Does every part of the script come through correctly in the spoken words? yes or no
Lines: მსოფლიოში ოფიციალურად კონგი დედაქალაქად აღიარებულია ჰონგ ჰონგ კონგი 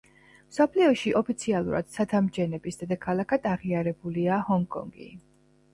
no